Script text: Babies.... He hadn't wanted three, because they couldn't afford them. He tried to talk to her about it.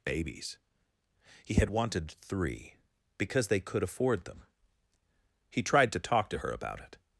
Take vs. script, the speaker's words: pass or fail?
fail